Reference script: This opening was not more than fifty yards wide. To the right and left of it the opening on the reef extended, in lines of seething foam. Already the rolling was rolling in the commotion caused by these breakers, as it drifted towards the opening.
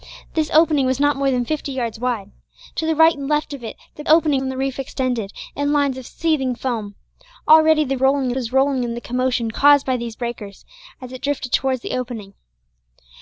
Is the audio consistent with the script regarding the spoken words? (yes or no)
yes